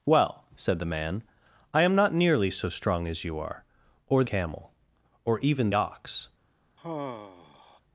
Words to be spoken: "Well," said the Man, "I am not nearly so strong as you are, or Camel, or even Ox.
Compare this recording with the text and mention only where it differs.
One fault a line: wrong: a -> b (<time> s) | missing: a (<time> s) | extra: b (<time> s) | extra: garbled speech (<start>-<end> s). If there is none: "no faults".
no faults